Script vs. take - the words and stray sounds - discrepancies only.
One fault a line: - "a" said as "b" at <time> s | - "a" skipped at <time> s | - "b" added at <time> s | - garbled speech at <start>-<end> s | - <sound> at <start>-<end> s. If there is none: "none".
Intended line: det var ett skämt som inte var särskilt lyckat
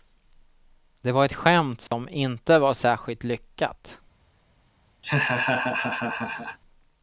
- dropout at 1.9-1.9 s
- laugh at 5.0-6.6 s